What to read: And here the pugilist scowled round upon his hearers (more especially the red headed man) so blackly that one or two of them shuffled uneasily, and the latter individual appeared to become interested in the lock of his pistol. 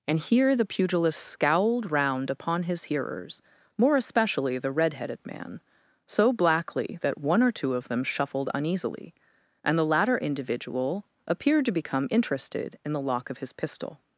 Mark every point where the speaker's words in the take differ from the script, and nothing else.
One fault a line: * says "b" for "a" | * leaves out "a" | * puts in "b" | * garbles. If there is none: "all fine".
all fine